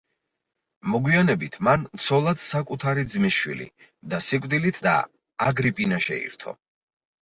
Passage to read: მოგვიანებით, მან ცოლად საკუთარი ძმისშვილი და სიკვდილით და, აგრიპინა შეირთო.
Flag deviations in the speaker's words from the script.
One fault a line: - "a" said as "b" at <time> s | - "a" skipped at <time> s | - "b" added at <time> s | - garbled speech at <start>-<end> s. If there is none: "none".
none